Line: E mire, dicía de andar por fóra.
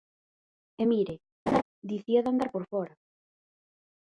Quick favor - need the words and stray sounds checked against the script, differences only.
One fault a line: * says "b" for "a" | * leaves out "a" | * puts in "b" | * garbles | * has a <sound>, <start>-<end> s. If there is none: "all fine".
* has a laugh, 1.5-1.6 s